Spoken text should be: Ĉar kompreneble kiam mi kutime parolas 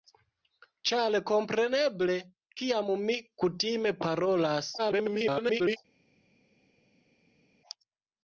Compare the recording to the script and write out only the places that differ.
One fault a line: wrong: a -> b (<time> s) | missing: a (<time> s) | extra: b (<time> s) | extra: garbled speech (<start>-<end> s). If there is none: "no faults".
extra: garbled speech (4.8-5.8 s)